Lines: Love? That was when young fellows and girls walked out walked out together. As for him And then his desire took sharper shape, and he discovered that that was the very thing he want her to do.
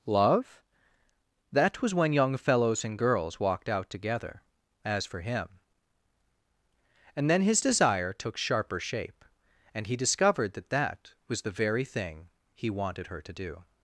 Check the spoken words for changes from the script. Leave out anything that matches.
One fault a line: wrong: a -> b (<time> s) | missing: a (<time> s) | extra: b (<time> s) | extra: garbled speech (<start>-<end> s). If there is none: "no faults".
missing: walked out (3.9 s)
wrong: want -> wanted (12.7 s)